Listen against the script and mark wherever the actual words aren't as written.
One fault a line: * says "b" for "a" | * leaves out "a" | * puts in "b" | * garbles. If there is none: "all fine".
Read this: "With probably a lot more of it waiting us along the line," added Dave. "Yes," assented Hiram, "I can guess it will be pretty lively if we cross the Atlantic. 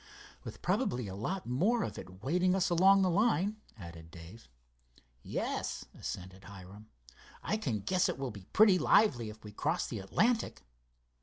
all fine